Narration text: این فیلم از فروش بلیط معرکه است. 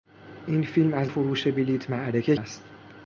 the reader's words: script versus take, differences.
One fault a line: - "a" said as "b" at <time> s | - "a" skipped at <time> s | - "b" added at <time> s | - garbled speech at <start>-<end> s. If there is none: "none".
none